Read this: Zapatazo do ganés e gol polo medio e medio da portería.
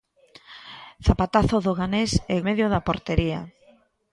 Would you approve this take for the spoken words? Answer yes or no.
no